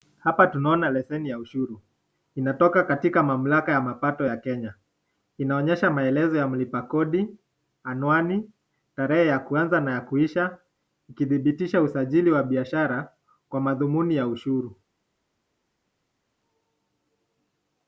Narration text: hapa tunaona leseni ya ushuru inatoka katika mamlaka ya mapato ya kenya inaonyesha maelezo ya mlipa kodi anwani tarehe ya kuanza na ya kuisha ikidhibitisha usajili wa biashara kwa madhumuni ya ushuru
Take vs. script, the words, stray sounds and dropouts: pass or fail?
pass